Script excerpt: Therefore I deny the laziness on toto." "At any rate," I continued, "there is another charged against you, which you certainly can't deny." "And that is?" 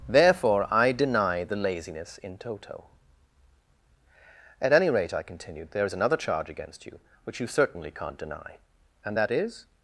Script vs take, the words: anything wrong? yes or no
yes